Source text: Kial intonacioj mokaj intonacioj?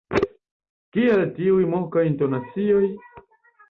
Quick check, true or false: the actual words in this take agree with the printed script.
false